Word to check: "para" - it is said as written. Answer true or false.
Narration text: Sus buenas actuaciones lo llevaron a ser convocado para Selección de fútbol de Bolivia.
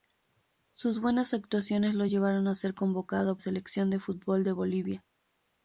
false